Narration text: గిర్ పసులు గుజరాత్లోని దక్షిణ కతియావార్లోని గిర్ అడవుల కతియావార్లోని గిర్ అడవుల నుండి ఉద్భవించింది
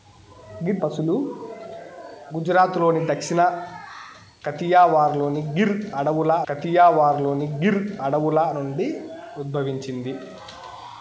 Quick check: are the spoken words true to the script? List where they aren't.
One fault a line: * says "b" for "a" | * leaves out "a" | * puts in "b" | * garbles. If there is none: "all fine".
all fine